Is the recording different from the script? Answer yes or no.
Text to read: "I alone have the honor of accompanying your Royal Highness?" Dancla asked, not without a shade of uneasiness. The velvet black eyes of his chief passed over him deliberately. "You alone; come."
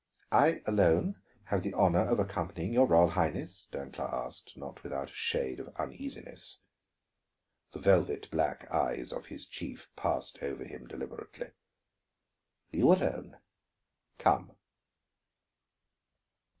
no